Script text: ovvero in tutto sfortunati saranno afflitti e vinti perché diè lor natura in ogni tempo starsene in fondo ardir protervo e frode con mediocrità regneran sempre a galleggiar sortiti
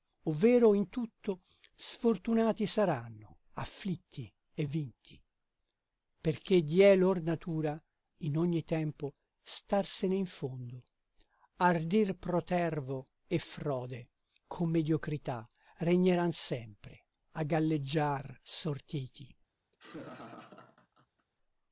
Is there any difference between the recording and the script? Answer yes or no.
no